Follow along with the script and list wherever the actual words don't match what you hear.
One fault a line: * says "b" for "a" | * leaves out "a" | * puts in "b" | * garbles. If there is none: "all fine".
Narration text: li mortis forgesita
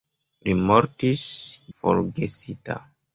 all fine